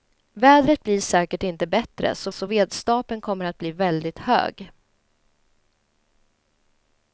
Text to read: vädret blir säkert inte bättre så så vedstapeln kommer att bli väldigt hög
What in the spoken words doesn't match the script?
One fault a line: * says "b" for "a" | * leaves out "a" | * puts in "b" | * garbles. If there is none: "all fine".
all fine